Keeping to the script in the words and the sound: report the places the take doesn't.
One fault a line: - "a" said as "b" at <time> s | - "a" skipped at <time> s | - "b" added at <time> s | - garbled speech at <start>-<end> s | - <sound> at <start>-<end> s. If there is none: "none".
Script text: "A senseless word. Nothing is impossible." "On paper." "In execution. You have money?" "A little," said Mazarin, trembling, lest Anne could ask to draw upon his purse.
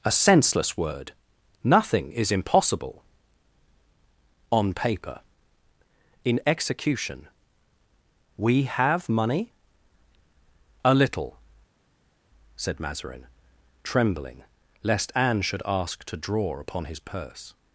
- "You" said as "We" at 8.3 s
- "could" said as "should" at 15.4 s